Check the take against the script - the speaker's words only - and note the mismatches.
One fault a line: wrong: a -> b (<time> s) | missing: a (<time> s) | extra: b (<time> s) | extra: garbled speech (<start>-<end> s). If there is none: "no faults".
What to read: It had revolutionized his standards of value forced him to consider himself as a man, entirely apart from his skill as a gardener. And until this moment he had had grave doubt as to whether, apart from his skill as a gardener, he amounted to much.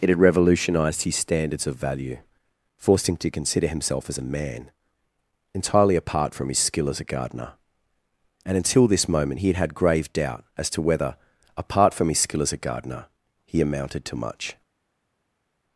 no faults